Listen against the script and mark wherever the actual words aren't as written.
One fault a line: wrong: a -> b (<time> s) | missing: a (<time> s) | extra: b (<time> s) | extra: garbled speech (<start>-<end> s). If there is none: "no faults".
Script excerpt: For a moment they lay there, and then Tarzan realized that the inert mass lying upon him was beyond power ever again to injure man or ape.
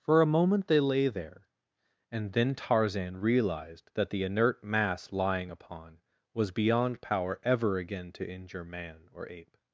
missing: him (6.0 s)